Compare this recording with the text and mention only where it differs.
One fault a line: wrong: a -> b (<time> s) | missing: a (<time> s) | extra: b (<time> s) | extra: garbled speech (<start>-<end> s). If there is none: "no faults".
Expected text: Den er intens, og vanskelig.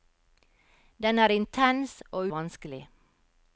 no faults